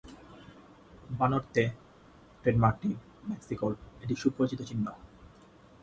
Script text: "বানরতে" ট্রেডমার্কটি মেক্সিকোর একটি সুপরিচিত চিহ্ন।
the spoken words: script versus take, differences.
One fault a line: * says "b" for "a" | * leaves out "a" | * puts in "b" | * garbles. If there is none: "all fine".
all fine